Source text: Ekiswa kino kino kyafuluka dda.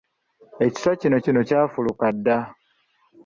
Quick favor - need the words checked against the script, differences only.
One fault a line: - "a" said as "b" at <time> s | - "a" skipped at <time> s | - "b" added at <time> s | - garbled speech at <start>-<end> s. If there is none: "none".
none